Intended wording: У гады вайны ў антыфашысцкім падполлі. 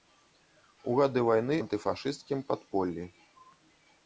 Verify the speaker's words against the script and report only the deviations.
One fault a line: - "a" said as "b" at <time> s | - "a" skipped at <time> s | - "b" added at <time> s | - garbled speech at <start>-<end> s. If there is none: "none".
- "ў" skipped at 1.6 s